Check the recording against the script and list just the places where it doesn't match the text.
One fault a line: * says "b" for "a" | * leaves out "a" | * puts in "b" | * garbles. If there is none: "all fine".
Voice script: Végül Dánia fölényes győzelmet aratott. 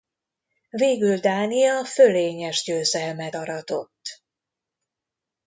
all fine